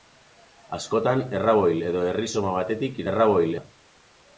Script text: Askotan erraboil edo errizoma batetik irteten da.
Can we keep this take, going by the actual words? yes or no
no